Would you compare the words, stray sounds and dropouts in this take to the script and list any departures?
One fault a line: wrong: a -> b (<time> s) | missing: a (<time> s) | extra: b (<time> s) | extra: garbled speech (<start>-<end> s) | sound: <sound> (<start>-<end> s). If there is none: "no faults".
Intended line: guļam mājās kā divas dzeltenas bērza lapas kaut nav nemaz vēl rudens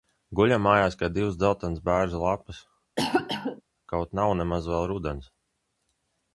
sound: cough (3.0-3.6 s)